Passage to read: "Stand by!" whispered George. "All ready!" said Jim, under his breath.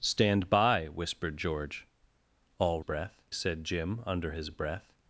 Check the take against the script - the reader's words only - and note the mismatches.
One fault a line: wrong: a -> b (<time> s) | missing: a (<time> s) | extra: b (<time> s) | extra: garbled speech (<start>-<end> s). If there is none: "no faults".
wrong: ready -> breath (2.8 s)